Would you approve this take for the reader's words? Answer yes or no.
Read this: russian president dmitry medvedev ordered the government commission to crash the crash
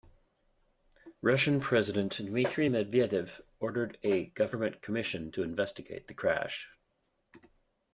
no